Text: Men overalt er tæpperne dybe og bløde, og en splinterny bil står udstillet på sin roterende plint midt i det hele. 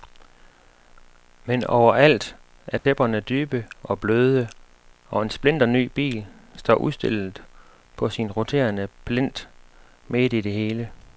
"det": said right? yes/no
yes